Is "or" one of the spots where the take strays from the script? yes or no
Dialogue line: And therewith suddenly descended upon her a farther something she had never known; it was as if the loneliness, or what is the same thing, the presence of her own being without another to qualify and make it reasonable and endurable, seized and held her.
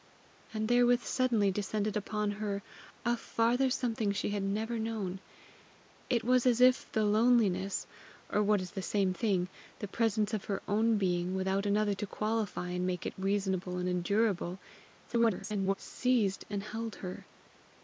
no